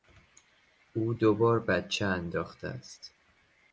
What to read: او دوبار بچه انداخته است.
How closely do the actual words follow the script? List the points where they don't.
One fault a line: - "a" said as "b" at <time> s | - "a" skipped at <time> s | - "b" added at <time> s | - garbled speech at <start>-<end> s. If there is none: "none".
none